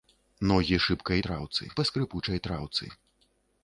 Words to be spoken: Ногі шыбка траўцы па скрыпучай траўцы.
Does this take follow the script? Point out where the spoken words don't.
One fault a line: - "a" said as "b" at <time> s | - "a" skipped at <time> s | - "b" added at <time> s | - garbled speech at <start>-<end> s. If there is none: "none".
none